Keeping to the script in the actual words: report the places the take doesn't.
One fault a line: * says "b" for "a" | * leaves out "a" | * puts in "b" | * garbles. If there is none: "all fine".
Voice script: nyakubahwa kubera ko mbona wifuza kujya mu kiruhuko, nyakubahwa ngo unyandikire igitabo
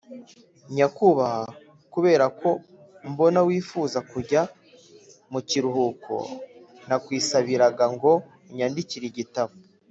* says "nakwisabiraga" for "nyakubahwa"